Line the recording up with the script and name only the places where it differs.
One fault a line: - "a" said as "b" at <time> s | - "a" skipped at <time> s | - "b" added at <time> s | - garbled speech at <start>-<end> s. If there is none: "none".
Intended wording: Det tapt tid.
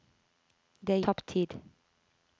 none